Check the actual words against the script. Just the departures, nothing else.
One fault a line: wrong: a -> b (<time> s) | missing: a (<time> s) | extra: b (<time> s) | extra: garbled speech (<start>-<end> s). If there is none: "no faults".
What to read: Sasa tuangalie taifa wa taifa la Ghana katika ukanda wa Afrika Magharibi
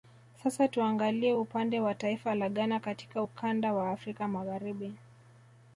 wrong: taifa -> upande (1.3 s)